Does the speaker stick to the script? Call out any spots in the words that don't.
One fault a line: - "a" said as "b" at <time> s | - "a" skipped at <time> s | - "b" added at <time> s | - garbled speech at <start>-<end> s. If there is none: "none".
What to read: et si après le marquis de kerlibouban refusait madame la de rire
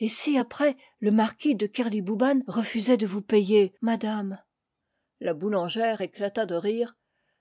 - "de vous payer" added at 3.0 s
- "boulangère éclata" added at 5.3 s